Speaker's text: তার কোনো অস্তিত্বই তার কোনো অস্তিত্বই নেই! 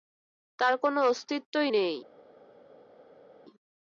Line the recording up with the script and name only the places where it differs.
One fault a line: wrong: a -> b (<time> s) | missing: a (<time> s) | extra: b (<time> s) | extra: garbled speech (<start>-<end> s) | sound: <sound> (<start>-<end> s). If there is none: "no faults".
missing: তার কোনো অস্তিত্বই (1.7 s)